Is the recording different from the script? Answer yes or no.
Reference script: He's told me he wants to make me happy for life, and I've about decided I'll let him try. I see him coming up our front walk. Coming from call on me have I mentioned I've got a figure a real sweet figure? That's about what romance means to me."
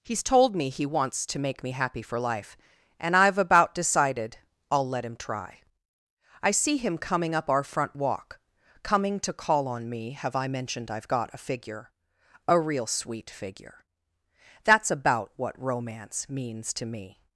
yes